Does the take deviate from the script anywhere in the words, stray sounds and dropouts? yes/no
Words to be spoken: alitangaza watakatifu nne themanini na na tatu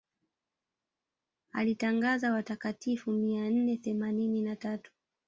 yes